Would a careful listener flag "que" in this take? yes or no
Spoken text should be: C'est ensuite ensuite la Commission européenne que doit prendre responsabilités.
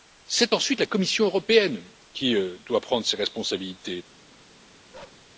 yes